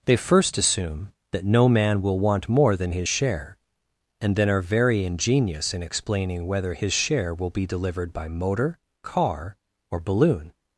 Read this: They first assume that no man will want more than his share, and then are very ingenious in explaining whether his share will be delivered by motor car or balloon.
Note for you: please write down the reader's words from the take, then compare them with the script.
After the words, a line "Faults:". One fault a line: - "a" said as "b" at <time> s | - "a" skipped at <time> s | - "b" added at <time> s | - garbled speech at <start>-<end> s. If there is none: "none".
They first assume that no man will want more than his share, and then are very ingenious in explaining whether his share will be delivered by motor car or balloon.
Faults:
none